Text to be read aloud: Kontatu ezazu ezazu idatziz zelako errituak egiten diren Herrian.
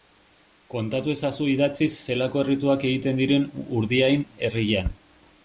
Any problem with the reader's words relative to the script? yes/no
yes